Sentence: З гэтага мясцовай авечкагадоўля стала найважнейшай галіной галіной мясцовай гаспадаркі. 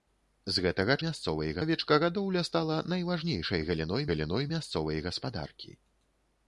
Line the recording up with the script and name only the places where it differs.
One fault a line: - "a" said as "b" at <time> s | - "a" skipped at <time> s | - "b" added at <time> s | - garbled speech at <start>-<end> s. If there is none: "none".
none